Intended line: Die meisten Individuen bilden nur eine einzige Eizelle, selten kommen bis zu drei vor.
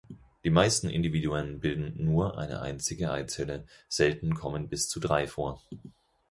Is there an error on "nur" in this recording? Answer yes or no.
no